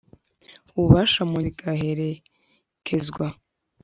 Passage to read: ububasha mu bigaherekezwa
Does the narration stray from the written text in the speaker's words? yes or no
no